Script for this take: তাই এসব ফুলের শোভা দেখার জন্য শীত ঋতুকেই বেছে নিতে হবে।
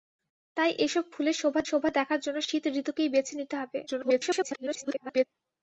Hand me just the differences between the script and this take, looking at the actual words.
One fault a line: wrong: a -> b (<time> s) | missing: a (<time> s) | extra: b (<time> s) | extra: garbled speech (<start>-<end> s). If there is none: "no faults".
extra: শোভা (1.6 s)
extra: garbled speech (3.9-5.3 s)